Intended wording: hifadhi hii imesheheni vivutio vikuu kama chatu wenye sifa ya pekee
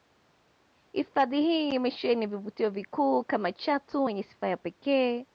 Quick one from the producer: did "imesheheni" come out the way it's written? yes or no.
yes